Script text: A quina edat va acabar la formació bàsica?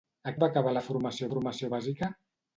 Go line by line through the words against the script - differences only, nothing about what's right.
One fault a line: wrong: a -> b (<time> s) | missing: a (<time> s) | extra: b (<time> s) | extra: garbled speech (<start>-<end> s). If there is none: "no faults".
missing: quina edat (0.3 s)
extra: formació (1.3 s)